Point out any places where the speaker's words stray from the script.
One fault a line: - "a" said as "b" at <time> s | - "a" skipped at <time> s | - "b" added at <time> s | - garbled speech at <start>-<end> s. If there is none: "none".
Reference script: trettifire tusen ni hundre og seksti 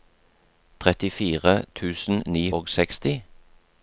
- "hundre" skipped at 2.4 s